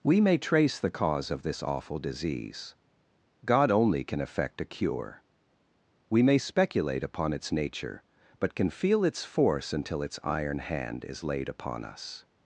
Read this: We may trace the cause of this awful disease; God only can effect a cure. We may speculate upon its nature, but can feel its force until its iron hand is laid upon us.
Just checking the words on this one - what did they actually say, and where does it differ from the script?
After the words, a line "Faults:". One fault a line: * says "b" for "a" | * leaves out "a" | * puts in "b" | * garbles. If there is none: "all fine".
We may trace the cause of this awful disease; God only can effect a cure. We may speculate upon its nature, but can feel its force until its iron hand is laid upon us.
Faults:
all fine